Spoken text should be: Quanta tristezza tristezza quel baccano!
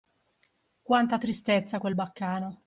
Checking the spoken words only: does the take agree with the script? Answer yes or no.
no